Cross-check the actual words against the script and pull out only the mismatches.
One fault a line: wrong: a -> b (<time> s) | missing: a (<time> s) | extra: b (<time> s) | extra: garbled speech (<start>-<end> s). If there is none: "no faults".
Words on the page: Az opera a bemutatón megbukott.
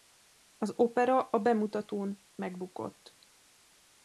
no faults